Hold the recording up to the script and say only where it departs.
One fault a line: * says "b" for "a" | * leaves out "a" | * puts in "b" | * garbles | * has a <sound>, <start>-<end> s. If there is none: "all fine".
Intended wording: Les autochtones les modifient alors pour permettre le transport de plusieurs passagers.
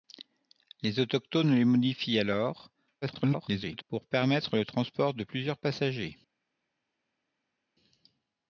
* garbles